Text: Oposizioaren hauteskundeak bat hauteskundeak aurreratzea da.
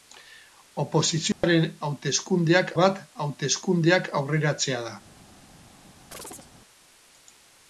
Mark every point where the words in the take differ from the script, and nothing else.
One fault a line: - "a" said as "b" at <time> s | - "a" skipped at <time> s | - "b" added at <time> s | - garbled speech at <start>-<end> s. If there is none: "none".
none